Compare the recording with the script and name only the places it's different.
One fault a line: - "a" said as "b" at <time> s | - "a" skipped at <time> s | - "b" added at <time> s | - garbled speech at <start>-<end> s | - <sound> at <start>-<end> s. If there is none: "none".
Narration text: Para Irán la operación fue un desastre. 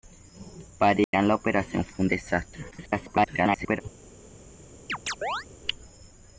- dropout at 1.0-1.1 s
- garbled speech at 2.7-3.8 s
- chirp at 4.9-5.5 s